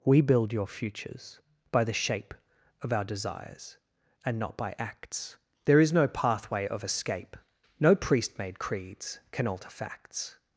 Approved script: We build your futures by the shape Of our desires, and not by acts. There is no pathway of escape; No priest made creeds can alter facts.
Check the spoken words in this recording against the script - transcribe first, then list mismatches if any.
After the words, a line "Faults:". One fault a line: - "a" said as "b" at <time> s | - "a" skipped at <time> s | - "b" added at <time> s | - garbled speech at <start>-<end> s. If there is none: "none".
We build your futures by the shape Of our desires, and not by acts. There is no pathway of escape; No priest made creeds can alter facts.
Faults:
none